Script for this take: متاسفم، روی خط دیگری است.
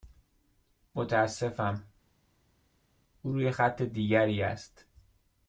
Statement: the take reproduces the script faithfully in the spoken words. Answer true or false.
false